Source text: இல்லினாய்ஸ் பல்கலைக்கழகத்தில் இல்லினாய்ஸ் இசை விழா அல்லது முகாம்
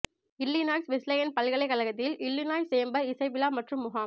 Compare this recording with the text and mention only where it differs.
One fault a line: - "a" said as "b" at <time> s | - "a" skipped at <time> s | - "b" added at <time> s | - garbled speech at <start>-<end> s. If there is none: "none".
- "வெஸ்லேயன்" added at 0.9 s
- "சேம்பர்" added at 2.7 s
- "அல்லது" said as "மற்றும்" at 3.5 s